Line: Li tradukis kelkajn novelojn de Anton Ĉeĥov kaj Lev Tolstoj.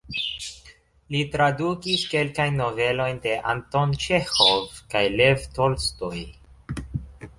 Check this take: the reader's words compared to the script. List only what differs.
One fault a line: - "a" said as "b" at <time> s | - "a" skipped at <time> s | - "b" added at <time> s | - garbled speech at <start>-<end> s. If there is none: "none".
none